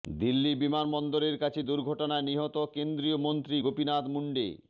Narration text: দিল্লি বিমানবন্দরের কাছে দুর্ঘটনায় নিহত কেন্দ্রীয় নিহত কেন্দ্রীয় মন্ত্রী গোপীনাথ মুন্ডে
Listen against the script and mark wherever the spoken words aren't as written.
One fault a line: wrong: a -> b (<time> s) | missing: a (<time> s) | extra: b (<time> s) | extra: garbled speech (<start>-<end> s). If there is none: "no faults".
missing: নিহত কেন্দ্রীয় (3.2 s)